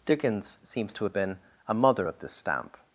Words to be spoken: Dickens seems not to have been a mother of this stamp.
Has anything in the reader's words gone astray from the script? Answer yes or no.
yes